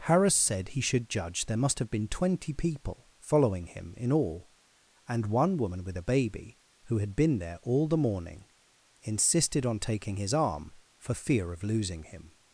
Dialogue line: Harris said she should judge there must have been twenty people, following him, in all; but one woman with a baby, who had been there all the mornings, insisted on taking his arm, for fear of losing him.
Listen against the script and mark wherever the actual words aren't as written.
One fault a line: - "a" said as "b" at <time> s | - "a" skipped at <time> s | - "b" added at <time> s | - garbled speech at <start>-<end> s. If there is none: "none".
- "she" said as "he" at 0.7 s
- "but" said as "and" at 5.1 s
- "mornings" said as "morning" at 8.0 s